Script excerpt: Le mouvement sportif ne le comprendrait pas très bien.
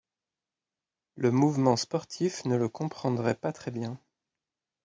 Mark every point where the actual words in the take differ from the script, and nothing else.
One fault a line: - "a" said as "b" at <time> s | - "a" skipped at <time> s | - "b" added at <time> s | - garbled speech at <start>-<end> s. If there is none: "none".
none